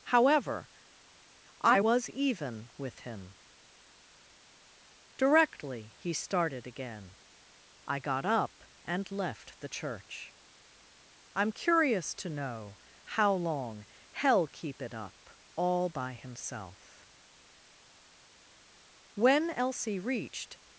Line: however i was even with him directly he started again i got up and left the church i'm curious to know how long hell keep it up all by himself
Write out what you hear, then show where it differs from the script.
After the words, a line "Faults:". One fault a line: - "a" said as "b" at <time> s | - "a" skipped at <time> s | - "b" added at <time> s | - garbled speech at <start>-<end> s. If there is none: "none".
however i was even with him directly he started again i got up and left the church i'm curious to know how long hell keep it up all by himself when elsie reached
Faults:
- "when elsie reached" added at 19.1 s